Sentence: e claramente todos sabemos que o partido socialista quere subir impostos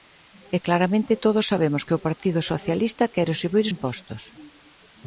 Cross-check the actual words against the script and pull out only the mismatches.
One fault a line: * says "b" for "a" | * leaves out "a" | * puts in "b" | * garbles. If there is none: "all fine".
all fine